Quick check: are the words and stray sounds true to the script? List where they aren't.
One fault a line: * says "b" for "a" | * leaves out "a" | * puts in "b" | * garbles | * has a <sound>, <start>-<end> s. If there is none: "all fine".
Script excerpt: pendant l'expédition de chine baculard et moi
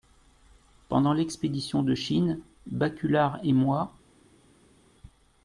all fine